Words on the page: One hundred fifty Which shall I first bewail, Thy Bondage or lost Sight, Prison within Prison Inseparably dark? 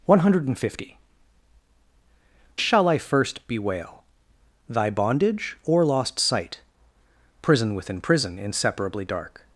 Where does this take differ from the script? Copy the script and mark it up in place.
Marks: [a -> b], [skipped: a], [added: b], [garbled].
One hundred fifty [skipped: Which] shall I first bewail, Thy Bondage or lost Sight, Prison within Prison Inseparably dark?